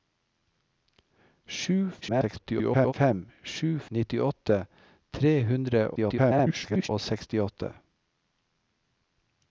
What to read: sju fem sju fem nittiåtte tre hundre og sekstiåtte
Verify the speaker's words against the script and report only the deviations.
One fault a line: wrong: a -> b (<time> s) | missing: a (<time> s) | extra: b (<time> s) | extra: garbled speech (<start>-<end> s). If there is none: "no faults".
extra: garbled speech (2.0-2.9 s)
missing: fem (3.7 s)
extra: garbled speech (5.9-6.9 s)